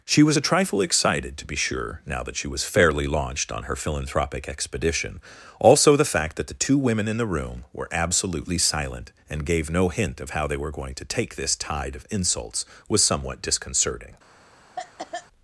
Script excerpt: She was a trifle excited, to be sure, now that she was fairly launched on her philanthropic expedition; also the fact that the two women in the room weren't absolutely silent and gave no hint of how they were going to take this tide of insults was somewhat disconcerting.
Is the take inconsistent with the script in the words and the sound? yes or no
yes